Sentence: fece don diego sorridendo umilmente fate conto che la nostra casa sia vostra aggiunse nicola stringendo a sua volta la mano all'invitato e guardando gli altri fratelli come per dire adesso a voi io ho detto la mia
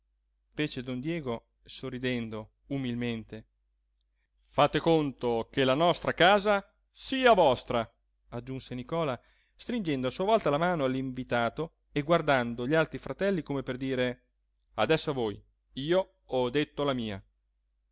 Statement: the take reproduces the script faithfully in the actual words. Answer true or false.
true